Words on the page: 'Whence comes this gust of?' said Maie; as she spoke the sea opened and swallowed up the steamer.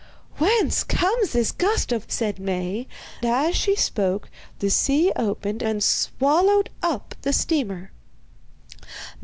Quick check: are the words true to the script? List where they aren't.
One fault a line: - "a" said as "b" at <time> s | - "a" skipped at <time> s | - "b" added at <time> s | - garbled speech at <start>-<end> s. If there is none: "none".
none